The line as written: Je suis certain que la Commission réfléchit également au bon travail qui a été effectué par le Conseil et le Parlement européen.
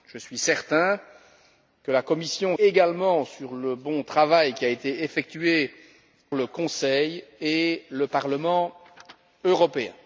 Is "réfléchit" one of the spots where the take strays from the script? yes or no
yes